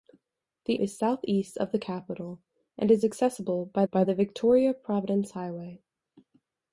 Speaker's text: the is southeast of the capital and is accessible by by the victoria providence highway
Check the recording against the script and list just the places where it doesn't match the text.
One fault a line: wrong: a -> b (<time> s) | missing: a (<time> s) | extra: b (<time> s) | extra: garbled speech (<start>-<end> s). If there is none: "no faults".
no faults